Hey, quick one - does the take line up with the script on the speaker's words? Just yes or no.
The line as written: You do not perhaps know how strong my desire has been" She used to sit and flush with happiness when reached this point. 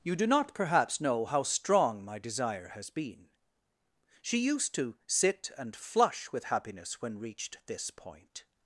yes